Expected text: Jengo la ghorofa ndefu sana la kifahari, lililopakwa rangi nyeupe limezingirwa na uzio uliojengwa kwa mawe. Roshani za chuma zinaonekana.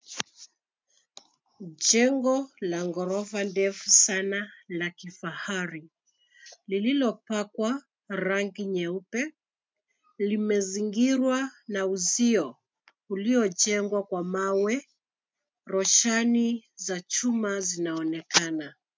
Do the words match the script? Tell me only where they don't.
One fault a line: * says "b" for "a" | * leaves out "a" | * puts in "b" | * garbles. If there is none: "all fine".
all fine